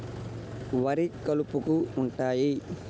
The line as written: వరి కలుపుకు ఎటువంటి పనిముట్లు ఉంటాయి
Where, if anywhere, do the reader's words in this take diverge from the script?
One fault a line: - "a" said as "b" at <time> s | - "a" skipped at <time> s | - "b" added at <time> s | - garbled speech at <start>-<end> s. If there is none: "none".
- "ఎటువంటి పనిముట్లు" skipped at 1.8 s